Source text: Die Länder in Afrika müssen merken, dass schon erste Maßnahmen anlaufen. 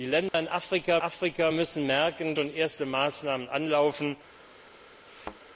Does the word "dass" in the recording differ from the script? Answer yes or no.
yes